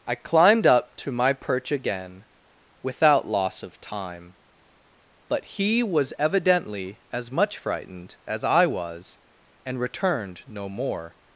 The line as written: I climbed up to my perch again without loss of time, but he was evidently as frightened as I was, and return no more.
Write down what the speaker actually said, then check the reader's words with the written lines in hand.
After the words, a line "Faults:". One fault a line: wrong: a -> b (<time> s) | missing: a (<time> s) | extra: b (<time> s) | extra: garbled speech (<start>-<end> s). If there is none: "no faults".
I climbed up to my perch again without loss of time, but he was evidently as much frightened as I was, and returned no more.
Faults:
extra: much (7.3 s)
wrong: return -> returned (9.8 s)